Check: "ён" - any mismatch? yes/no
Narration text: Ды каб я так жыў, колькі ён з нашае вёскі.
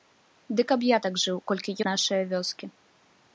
yes